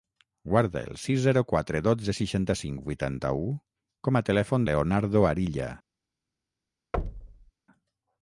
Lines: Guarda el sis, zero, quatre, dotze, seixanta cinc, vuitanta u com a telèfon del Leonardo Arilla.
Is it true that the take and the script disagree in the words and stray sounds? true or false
true